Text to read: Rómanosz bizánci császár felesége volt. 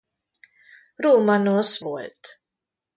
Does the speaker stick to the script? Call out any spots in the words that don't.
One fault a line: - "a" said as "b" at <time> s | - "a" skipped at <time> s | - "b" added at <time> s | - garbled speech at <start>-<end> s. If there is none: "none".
- "bizánci császár felesége" skipped at 1.8 s